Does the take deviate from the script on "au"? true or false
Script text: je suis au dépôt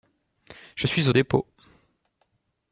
false